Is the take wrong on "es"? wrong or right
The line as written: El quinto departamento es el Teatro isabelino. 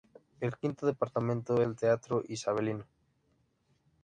wrong